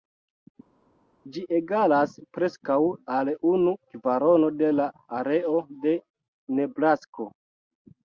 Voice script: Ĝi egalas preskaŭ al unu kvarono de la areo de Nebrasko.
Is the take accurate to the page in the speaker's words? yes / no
yes